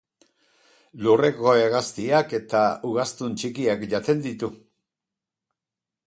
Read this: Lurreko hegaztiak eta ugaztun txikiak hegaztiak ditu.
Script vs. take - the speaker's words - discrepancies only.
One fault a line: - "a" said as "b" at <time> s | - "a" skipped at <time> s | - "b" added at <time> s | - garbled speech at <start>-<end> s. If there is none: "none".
- "hegaztiak" said as "jaten" at 3.9 s